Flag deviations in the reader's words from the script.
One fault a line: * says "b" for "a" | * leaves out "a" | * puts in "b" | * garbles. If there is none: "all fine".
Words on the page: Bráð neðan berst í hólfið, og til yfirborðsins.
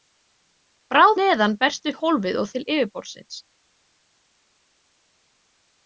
all fine